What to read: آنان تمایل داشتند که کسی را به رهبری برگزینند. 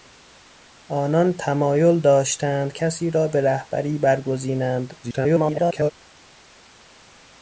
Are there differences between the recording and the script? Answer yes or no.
yes